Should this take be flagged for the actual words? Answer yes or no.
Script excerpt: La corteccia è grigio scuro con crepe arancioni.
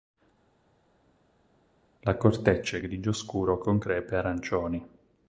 no